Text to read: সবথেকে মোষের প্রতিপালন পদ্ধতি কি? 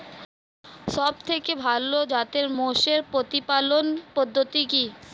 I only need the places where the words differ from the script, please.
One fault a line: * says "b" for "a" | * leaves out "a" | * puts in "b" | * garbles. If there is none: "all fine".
* puts in "ভালো জাতের"